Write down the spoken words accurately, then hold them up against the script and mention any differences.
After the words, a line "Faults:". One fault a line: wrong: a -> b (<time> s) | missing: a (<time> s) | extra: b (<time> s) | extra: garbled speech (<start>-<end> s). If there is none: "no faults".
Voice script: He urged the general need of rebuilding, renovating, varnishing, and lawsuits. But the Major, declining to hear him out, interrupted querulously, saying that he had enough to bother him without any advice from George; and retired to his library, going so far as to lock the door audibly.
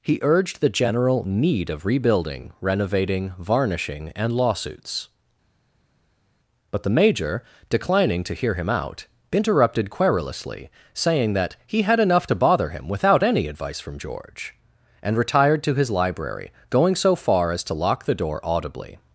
He urged the general need of rebuilding, renovating, varnishing, and lawsuits. But the Major, declining to hear him out, interrupted querulously, saying that he had enough to bother him without any advice from George; and retired to his library, going so far as to lock the door audibly.
Faults:
no faults